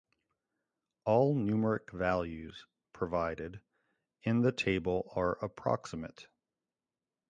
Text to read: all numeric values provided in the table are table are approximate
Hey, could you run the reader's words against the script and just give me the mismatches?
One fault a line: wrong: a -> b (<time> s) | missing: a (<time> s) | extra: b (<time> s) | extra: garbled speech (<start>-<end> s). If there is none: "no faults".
missing: table are (5.4 s)